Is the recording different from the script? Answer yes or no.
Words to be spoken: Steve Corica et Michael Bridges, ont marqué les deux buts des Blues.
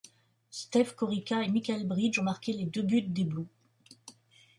no